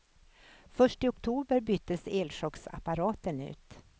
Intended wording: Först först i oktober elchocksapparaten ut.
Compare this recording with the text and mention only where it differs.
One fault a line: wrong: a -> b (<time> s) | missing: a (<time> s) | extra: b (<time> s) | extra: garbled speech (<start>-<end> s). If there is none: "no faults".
missing: först (1.0 s)
extra: byttes (1.6 s)